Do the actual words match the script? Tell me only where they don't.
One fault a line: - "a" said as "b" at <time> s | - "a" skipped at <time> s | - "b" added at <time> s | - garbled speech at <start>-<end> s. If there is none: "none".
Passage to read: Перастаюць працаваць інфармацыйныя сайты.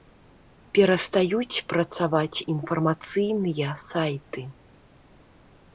none